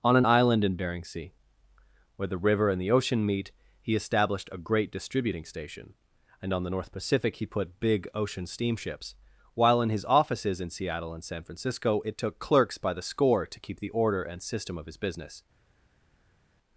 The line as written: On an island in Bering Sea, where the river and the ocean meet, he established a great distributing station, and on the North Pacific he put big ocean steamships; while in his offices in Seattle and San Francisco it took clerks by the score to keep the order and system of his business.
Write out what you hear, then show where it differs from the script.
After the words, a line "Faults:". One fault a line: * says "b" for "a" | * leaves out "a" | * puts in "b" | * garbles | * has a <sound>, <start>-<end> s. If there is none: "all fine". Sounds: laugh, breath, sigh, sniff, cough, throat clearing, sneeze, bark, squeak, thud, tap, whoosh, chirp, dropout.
On an island in Bering Sea, where the river and the ocean meet, he established a great distributing station, and on the North Pacific he put big ocean steamships; while in his offices in Seattle and San Francisco it took clerks by the score to keep the order and system of his business.
Faults:
all fine